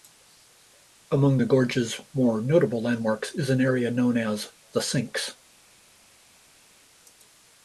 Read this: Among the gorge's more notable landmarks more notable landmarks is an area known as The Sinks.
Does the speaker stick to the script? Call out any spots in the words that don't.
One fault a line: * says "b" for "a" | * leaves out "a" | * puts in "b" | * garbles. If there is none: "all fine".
* leaves out "more notable landmarks"